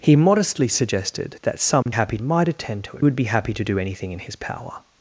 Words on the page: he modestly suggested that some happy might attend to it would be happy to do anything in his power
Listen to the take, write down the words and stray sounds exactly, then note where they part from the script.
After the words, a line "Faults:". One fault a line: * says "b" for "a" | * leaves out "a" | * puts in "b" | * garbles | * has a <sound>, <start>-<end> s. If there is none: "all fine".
he modestly suggested that some happy might attend to it would be happy to do anything in his power
Faults:
* has a dropout, 1.8-1.9 s